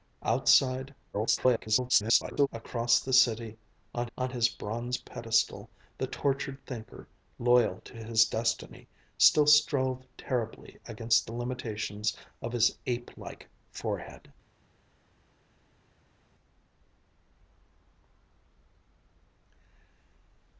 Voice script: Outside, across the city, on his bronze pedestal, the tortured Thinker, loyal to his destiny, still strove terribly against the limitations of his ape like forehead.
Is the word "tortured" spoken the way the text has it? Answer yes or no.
yes